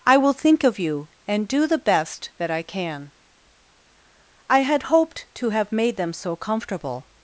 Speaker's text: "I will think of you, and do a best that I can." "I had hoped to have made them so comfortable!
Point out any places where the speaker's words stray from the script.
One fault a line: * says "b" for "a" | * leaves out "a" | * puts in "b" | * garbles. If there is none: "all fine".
* says "the" for "a"